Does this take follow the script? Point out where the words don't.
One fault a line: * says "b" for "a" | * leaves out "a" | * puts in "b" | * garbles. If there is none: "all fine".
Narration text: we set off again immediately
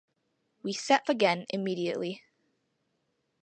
* leaves out "off"